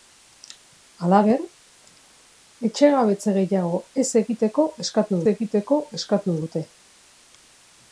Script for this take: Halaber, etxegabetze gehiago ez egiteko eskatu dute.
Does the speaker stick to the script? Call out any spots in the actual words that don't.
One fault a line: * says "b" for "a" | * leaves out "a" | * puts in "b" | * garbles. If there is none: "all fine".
* puts in "egiteko eskatu"